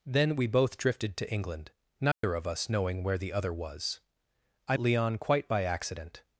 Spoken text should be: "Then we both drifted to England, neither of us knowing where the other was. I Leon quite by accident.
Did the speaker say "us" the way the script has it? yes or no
yes